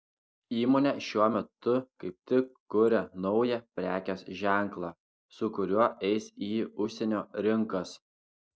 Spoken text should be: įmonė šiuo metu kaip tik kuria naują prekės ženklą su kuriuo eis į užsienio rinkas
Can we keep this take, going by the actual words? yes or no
yes